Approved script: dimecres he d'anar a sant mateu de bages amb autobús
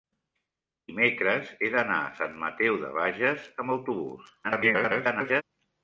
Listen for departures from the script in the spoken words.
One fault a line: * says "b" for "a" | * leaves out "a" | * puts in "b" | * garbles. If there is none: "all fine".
* garbles